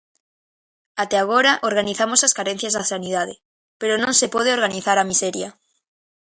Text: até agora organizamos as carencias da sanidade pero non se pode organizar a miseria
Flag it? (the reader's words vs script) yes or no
no